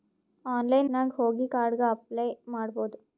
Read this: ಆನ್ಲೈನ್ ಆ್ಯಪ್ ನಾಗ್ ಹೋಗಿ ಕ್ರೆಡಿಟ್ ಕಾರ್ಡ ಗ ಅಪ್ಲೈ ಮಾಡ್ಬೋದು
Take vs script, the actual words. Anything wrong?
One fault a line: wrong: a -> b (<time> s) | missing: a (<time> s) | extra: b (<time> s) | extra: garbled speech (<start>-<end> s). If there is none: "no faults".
missing: ಆ್ಯಪ್ (0.9 s)
missing: ಕ್ರೆಡಿಟ್ (1.5 s)